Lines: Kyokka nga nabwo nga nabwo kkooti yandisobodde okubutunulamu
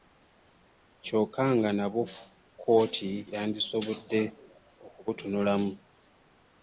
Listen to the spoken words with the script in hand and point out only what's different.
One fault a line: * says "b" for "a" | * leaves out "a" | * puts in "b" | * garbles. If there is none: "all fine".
* leaves out "nga nabwo"